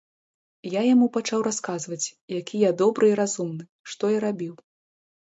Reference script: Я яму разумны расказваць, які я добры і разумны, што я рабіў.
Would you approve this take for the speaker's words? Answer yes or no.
no